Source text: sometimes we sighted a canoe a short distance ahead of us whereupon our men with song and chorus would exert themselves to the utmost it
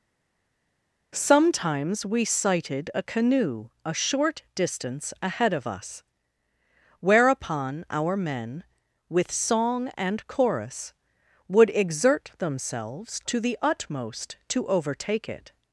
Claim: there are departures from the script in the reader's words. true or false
true